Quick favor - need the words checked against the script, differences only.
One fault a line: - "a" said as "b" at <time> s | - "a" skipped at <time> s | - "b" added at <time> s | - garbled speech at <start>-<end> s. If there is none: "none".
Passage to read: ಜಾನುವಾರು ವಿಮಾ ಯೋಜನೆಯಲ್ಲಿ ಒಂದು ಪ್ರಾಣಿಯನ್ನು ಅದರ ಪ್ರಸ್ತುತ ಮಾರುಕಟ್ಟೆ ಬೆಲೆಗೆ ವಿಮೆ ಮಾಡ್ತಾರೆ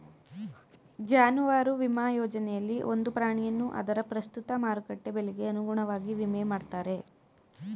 - "ಅನುಗುಣವಾಗಿ" added at 5.5 s